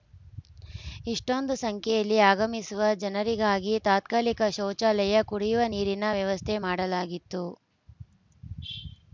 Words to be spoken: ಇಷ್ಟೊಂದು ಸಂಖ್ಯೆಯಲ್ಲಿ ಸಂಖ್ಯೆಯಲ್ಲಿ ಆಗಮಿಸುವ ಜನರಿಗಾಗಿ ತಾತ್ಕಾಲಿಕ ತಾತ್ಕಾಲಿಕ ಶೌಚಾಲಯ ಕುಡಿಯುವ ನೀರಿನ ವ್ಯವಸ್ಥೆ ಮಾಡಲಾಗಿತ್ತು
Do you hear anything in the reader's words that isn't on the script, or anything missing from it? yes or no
yes